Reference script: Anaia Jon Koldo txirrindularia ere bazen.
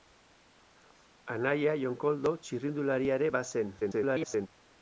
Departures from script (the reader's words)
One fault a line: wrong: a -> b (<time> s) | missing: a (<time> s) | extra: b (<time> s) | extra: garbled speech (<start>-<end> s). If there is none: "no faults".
extra: garbled speech (3.8-4.5 s)